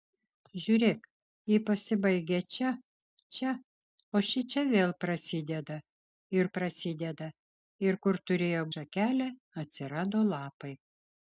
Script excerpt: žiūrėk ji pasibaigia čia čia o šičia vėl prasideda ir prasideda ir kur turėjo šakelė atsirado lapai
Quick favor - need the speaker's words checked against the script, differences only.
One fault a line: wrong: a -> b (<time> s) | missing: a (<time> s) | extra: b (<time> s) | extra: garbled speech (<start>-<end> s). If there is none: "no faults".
no faults